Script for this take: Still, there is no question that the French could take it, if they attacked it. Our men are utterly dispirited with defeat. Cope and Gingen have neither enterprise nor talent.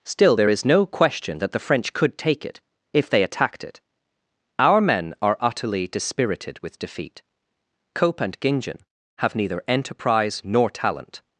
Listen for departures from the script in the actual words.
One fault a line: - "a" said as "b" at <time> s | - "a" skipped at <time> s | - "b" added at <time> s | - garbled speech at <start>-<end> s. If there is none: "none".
none